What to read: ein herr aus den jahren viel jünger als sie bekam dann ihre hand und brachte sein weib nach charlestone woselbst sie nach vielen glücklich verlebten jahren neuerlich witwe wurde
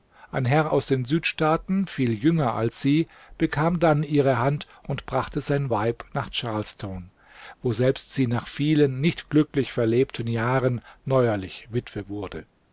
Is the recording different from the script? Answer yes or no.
yes